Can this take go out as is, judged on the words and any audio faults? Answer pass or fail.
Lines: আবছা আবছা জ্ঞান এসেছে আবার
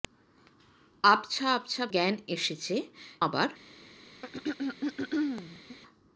fail